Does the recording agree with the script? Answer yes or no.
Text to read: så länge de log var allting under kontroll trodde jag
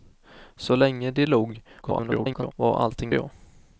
no